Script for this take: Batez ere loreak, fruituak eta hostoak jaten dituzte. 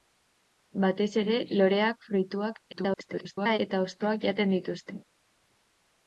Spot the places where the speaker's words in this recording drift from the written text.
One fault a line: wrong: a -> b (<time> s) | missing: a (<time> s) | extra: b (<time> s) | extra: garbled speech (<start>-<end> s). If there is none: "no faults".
extra: garbled speech (2.7-3.6 s)